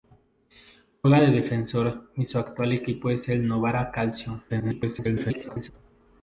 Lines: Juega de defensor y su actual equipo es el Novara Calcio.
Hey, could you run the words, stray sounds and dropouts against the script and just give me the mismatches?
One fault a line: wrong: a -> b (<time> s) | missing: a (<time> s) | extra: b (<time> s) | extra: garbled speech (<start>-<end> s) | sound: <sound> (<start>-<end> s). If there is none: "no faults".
extra: garbled speech (4.5-5.7 s)